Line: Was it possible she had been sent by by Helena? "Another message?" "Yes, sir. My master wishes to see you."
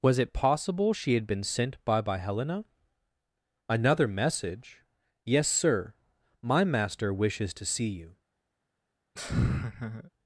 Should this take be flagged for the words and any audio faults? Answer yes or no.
yes